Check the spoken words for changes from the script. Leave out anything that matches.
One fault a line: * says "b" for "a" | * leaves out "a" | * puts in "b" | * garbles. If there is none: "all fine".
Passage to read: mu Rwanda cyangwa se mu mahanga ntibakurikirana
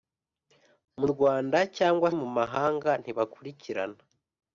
* leaves out "se"